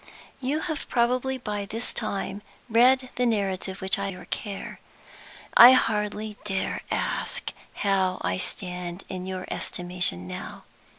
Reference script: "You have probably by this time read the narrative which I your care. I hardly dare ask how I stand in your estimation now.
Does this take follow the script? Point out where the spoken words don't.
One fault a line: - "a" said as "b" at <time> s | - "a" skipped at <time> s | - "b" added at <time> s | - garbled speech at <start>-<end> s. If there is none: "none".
none